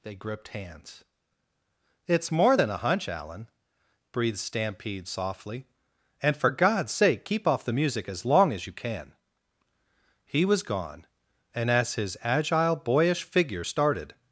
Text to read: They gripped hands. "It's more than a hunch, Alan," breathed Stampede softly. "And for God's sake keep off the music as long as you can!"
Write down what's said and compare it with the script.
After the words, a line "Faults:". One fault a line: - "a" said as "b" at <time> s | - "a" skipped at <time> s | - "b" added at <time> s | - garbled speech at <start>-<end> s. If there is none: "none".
They gripped hands. "It's more than a hunch, Alan," breathed Stampede softly. "And for God's sake keep off the music as long as you can!" He was gone, and as his agile, boyish figure started
Faults:
- "He was gone and as his agile boyish figure started" added at 10.2 s